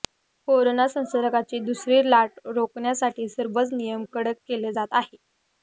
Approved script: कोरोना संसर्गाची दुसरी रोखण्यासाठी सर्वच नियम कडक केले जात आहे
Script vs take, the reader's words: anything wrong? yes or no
yes